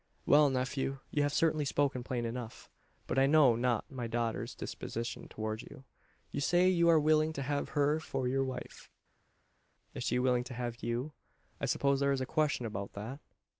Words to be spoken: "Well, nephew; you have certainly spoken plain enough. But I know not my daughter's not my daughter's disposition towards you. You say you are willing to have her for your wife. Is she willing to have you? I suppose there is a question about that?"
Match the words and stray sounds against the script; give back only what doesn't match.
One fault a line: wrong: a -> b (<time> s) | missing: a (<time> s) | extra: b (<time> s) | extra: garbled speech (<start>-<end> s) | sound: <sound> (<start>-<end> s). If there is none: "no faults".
missing: not my daughter's (4.5 s)